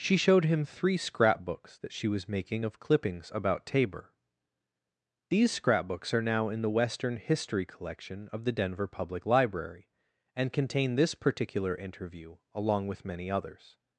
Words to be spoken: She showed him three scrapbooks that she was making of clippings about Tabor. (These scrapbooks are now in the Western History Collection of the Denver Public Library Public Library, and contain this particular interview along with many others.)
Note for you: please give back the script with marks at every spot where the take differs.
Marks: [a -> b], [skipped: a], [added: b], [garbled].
She showed him three scrapbooks that she was making of clippings about Tabor. (These scrapbooks are now in the Western History Collection of the Denver Public Library [skipped: Public Library,] and contain this particular interview along with many others.)